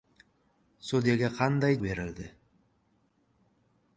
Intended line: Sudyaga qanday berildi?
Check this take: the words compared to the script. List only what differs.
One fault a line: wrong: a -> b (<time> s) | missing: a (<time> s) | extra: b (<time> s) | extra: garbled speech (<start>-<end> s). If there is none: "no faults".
no faults